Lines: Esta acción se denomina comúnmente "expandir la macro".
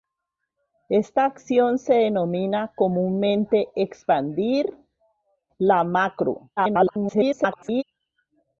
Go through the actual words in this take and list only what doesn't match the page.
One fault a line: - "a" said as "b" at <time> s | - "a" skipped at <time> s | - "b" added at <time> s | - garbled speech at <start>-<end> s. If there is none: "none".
- garbled speech at 6.6-7.8 s